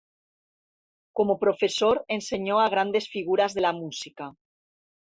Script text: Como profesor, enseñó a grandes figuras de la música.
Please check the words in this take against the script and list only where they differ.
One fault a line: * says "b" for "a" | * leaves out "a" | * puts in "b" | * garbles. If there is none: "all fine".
all fine